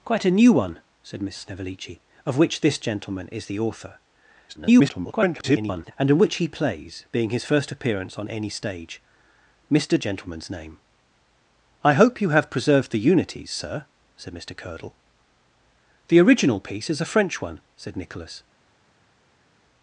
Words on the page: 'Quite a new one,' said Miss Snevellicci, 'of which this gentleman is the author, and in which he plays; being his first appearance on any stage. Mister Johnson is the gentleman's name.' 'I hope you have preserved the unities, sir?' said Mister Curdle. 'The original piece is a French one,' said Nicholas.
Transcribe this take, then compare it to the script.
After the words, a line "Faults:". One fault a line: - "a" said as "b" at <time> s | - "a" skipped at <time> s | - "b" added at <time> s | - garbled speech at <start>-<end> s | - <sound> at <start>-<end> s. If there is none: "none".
'Quite a new one,' said Miss Snevellicci, 'of which this gentleman is the author, [garbled] and in which he plays; being his first appearance on any stage. Mister Gentleman's name.' 'I hope you have preserved the unities, sir?' said Mister Curdle. 'The original piece is a French one,' said Nicholas.
Faults:
- garbled speech at 4.5-5.9 s
- "Johnson is the" skipped at 10.0 s